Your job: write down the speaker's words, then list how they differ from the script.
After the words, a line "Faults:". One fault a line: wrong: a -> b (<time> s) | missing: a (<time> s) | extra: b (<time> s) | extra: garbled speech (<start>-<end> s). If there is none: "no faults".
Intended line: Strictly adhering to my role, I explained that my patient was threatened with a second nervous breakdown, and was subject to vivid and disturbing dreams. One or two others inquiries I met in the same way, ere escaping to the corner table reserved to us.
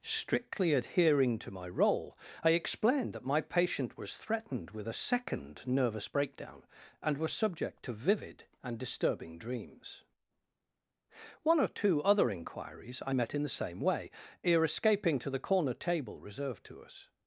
Strictly adhering to my role, I explained that my patient was threatened with a second nervous breakdown, and was subject to vivid and disturbing dreams. One or two other inquiries I met in the same way, ere escaping to the corner table reserved to us.
Faults:
wrong: others -> other (12.0 s)